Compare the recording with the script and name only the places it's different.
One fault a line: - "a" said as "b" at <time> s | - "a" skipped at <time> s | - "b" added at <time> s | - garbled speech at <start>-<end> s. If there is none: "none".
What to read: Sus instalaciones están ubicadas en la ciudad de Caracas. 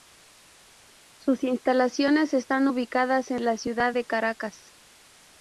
none